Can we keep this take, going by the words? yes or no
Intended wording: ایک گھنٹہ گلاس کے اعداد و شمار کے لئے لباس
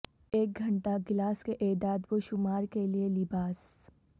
yes